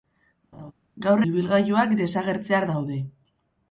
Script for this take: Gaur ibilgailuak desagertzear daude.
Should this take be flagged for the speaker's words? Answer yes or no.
no